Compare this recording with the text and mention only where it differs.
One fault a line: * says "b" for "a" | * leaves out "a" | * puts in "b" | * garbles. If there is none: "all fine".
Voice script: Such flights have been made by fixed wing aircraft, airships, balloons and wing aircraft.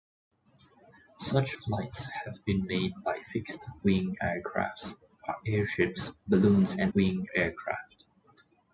all fine